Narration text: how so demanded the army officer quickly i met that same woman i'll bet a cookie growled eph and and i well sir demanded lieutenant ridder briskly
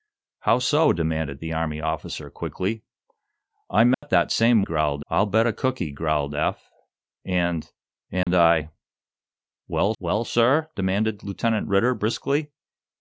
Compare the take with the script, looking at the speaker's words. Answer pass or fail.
fail